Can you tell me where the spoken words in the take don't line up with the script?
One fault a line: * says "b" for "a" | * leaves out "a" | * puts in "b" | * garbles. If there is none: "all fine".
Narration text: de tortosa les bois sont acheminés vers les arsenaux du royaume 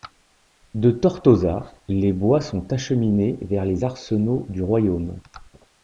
all fine